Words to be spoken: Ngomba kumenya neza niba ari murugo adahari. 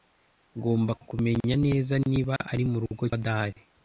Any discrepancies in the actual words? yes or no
no